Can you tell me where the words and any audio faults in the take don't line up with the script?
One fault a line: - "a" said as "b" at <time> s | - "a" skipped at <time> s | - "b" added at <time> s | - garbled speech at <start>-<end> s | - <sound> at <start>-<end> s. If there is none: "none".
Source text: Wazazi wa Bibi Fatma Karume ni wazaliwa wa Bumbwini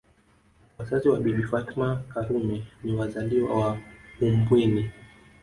none